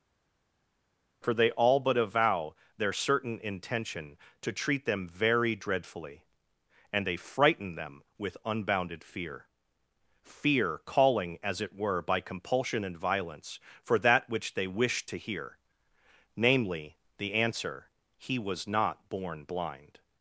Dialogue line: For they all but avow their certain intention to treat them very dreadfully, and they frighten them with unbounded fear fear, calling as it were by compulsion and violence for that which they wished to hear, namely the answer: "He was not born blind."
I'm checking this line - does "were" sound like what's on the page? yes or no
yes